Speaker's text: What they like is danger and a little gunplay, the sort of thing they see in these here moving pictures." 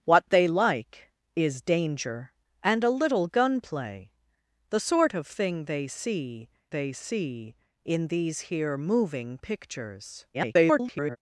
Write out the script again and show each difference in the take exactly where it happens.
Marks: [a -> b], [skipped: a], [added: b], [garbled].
What they like is danger and a little gunplay, the sort of thing they see [added: they see] in these here moving pictures." [garbled]